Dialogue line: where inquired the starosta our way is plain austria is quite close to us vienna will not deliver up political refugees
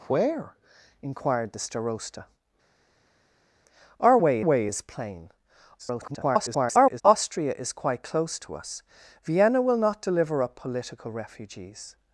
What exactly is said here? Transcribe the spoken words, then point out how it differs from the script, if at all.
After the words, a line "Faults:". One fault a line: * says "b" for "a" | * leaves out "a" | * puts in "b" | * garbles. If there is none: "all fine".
where inquired the starosta our way way is plain [garbled] austria is quite close to us vienna will not deliver up political refugees
Faults:
* puts in "way"
* garbles